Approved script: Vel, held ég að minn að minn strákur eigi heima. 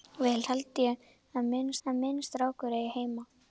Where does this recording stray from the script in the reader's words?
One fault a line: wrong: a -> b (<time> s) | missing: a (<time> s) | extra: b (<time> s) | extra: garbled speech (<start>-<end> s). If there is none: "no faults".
no faults